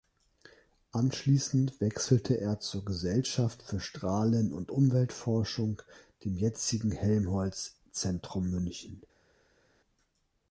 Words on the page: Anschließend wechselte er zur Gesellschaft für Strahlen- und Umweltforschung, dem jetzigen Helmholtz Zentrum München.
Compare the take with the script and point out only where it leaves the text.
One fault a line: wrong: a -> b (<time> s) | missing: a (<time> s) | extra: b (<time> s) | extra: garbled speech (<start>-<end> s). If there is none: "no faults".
no faults